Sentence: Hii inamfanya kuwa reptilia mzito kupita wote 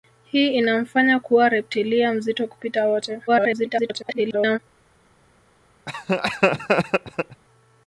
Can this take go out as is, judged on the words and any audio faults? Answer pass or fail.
fail